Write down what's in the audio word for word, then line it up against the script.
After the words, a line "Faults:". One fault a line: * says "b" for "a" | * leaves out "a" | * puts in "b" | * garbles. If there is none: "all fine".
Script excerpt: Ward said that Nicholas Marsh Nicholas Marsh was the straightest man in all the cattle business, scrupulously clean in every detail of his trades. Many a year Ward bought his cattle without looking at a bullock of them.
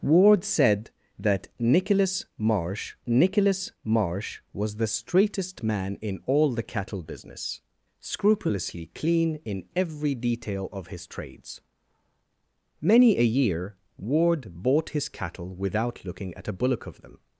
Ward said that Nicholas Marsh Nicholas Marsh was the straightest man in all the cattle business, scrupulously clean in every detail of his trades. Many a year Ward bought his cattle without looking at a bullock of them.
Faults:
all fine